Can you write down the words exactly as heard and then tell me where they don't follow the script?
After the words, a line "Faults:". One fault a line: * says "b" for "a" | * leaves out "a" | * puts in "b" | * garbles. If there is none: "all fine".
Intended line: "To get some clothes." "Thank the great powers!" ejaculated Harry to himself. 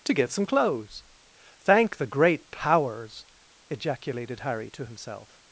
"To get some clothes." "Thank the great powers!" ejaculated Harry to himself.
Faults:
all fine